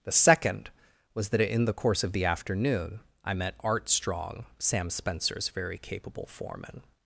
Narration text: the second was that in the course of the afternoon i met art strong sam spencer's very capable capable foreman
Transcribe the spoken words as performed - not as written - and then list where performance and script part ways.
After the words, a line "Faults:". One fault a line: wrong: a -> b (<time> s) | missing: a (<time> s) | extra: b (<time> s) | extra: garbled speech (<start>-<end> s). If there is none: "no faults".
the second was that in the course of the afternoon i met art strong sam spencer's very capable foreman
Faults:
missing: capable (6.2 s)